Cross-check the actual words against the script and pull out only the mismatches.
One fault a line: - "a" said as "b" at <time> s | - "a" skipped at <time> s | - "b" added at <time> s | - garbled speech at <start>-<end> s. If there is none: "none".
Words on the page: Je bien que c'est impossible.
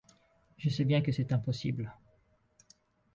- "sais" added at 0.7 s